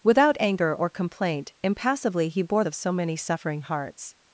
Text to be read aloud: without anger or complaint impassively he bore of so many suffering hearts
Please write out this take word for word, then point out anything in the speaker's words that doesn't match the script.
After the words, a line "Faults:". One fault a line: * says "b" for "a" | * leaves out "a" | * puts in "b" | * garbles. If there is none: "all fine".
without anger or complaint impassively he bore of so many suffering hearts
Faults:
all fine